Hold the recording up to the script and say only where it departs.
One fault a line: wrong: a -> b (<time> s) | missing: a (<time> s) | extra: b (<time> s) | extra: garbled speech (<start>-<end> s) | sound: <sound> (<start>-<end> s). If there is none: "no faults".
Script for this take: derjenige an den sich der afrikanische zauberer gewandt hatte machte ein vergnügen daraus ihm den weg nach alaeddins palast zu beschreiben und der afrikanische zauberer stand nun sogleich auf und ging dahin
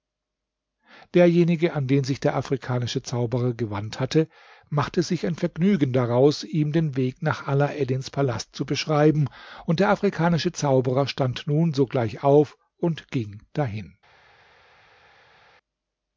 extra: sich (5.0 s)